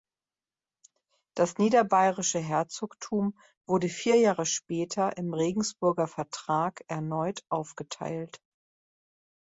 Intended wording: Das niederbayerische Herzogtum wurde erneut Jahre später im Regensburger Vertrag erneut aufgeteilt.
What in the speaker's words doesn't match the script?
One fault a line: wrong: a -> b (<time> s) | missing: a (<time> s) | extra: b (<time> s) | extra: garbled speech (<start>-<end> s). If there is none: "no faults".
wrong: erneut -> vier (3.9 s)